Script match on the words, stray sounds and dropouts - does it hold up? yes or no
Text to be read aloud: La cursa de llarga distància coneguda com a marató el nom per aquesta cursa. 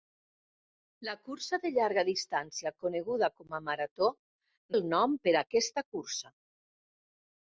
yes